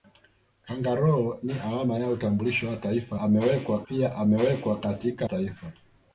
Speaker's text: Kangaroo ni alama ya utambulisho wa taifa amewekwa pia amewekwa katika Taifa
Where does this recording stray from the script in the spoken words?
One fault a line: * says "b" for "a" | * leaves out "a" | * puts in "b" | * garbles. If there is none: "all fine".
all fine